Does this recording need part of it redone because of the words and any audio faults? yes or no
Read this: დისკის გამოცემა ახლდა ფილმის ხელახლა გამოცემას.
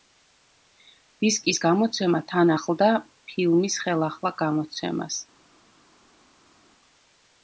yes